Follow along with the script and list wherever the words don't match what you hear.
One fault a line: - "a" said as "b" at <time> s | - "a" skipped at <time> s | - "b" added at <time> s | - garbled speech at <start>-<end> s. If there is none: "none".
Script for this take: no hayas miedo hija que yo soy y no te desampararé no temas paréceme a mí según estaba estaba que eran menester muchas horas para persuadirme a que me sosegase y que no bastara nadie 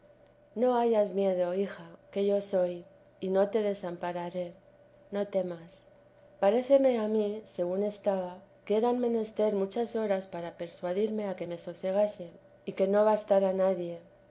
- "estaba" skipped at 8.4 s